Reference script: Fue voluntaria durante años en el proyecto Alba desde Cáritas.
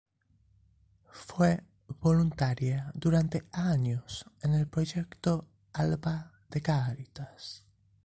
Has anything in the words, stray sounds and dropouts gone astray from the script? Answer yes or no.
yes